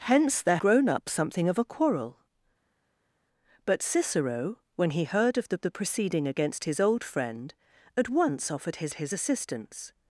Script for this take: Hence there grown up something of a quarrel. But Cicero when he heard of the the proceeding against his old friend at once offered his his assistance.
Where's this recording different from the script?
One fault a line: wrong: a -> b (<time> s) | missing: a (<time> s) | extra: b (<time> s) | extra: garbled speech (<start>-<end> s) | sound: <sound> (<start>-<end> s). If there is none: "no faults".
no faults